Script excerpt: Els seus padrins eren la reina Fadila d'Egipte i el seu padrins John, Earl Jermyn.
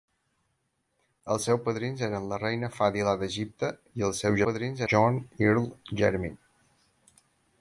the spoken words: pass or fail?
pass